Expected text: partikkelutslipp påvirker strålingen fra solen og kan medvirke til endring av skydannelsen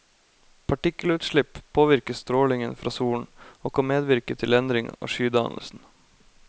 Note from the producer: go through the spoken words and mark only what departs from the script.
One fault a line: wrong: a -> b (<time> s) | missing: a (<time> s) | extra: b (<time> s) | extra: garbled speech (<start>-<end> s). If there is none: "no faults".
no faults